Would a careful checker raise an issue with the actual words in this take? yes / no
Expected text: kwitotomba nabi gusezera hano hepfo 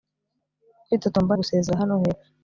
yes